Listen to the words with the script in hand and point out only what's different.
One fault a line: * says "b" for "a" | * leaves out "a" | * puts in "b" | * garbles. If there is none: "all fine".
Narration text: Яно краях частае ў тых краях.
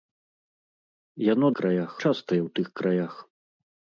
all fine